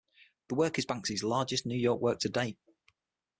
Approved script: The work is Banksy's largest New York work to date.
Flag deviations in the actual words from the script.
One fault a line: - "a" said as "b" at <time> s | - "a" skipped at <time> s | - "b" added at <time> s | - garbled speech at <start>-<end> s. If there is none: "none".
none